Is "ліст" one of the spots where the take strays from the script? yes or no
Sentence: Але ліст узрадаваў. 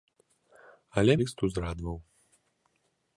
no